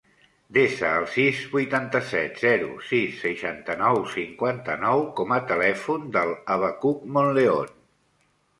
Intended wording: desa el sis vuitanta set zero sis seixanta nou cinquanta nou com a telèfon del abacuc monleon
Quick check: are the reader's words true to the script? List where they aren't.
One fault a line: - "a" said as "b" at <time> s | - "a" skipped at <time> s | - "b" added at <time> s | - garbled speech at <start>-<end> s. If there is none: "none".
none